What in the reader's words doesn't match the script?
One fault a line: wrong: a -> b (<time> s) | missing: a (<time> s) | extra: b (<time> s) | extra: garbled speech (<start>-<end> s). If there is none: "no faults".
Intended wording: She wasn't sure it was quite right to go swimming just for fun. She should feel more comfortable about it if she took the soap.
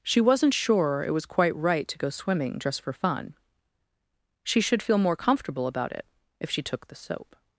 no faults